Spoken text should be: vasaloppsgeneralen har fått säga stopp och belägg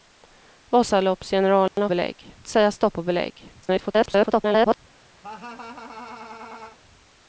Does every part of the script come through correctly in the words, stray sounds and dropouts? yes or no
no